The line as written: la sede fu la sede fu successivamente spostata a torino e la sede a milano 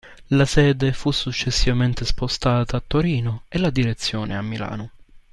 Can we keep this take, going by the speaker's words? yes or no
no